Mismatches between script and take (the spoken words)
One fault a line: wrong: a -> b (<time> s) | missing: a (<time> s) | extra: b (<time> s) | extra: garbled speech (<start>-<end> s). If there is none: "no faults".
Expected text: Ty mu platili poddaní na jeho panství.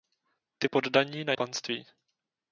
missing: mu platili (0.7 s)
missing: jeho (1.3 s)